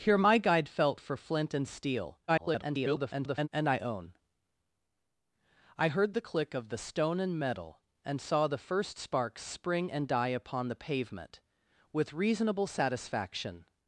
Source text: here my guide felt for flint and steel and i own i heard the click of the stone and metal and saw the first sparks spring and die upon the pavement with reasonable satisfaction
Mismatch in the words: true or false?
true